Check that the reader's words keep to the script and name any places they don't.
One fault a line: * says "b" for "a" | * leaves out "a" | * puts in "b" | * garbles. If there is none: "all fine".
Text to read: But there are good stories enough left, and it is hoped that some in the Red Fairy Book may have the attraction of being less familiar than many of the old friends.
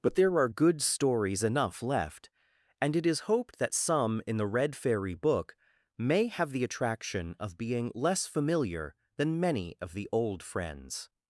all fine